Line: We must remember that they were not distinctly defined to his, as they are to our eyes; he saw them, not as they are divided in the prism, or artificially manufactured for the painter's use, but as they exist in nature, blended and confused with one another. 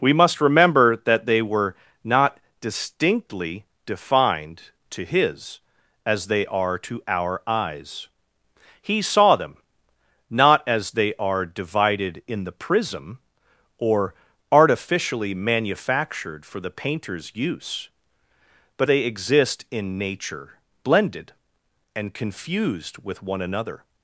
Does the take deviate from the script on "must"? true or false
false